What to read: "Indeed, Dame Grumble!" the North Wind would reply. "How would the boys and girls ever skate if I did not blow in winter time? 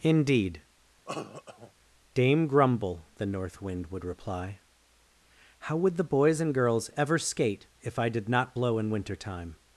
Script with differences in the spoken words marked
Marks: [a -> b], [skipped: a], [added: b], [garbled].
"Indeed, Dame Grumble!" the North Wind would reply. "How would the boys and girls ever skate if I did not blow in winter time?